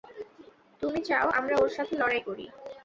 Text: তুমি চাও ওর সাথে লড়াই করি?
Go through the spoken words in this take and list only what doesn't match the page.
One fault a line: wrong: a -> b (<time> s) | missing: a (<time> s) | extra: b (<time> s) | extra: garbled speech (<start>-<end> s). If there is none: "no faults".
extra: আমরা (1.4 s)